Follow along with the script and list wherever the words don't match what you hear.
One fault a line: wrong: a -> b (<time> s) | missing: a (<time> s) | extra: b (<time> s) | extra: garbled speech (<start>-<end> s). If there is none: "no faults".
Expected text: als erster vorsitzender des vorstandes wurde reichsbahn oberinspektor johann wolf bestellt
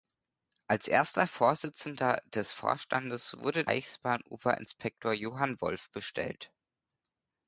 no faults